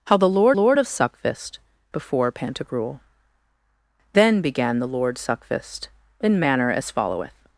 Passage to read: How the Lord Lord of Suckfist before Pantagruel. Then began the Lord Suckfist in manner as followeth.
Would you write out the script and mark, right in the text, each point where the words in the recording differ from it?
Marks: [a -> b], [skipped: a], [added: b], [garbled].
How the Lord Lord of Suckfist before Pantagruel. Then began the Lord Suckfist in manner as followeth.